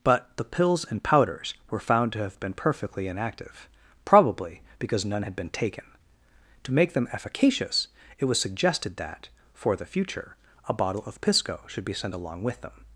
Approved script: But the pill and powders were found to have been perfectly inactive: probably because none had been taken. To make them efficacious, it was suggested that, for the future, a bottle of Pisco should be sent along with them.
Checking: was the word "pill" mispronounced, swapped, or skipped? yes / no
yes